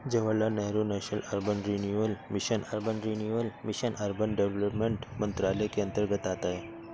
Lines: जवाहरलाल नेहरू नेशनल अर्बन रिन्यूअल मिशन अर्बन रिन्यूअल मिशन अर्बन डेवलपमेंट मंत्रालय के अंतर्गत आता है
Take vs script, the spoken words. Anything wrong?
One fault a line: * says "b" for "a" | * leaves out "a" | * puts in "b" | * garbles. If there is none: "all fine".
all fine